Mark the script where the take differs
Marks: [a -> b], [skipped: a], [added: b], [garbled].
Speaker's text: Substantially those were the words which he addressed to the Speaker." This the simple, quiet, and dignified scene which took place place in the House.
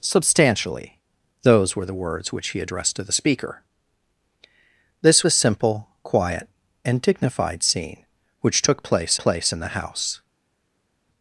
Substantially those were the words which he addressed to the Speaker." This the simple, quiet, and dignified scene which took place place in the House.